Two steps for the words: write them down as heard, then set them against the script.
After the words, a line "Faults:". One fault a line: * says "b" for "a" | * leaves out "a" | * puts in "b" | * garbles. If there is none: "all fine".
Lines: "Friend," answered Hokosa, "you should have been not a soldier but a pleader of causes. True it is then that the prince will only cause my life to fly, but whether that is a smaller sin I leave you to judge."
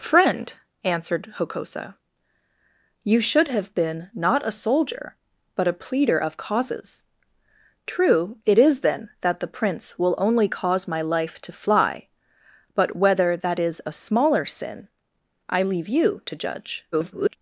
"Friend," answered Hokosa, "you should have been not a soldier but a pleader of causes. True it is then that the prince will only cause my life to fly, but whether that is a smaller sin I leave you to judge." [garbled]
Faults:
* garbles